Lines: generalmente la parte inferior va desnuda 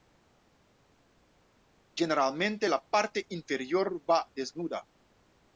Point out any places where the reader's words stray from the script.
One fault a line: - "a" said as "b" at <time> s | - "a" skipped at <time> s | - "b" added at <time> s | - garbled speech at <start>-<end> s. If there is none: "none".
none